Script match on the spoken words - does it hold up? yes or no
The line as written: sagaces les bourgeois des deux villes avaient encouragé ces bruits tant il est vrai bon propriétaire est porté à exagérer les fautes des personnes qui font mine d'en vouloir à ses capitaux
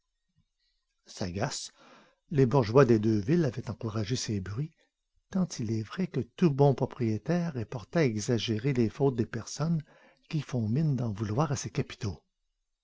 no